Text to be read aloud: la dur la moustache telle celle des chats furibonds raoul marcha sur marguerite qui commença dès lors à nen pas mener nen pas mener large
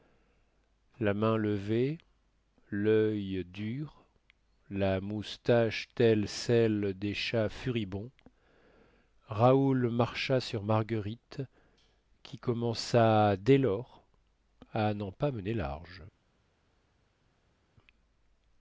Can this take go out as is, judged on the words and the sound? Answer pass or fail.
fail